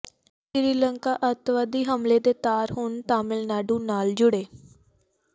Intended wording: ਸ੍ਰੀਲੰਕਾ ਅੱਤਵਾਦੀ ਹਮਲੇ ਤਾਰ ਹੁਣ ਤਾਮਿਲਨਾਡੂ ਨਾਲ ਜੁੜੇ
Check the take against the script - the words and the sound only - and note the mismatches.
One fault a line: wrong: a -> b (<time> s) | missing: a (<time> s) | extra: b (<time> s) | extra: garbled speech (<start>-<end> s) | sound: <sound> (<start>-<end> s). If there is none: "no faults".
extra: ਦੇ (2.2 s)